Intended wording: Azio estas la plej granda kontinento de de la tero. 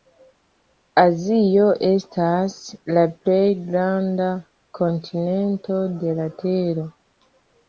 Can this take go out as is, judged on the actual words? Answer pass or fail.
fail